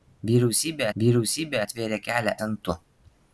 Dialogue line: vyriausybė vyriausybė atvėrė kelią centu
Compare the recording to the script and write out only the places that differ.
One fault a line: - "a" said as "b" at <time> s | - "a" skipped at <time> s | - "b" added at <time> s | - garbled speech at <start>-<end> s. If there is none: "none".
none